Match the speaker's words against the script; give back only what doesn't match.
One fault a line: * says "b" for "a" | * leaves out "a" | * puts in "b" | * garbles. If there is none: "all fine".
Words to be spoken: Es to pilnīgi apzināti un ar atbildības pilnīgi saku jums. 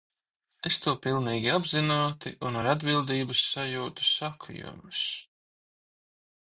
* says "sajūtu" for "pilnīgi"